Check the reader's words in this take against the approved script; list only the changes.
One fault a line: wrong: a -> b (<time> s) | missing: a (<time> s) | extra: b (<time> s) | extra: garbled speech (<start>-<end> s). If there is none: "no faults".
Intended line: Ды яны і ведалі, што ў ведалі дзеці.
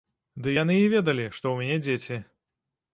wrong: ведалі -> мяне (1.6 s)